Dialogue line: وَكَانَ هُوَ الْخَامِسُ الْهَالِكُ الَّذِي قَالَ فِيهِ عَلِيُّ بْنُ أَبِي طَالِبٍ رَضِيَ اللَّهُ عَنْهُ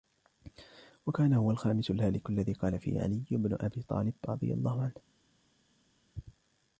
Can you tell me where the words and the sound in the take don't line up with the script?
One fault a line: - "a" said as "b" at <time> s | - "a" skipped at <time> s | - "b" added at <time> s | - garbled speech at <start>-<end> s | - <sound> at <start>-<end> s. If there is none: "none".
none